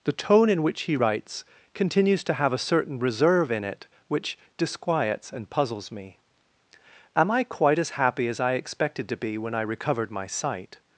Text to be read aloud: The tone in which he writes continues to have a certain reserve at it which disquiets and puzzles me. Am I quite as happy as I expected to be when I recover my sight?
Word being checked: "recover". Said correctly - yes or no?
no